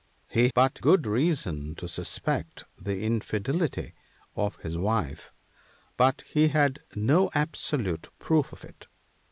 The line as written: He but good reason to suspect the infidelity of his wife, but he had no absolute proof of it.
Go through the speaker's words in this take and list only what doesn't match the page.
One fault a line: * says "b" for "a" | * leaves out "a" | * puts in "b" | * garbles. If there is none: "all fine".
all fine